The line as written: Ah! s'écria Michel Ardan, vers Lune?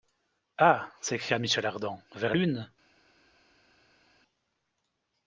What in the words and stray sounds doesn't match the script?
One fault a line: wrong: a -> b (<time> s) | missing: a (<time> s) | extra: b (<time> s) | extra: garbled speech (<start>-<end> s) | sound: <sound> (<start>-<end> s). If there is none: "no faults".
no faults